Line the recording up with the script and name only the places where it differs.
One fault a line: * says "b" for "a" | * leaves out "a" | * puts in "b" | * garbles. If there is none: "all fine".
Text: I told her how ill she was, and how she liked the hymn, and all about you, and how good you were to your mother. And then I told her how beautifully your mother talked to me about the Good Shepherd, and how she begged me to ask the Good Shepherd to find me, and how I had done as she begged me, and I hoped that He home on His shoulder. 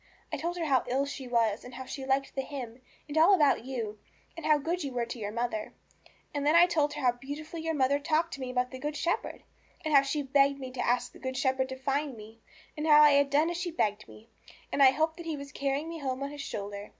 * puts in "was carrying me"